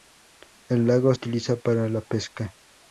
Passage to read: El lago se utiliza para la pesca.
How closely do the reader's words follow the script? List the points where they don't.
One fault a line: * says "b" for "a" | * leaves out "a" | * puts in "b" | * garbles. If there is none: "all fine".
* leaves out "se"